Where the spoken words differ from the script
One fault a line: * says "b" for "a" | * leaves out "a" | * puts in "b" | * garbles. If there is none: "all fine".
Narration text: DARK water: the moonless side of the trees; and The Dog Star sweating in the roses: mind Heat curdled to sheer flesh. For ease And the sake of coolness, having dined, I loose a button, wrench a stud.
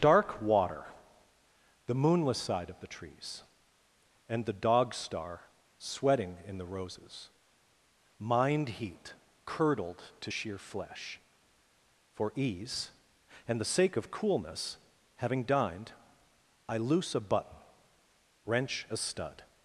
all fine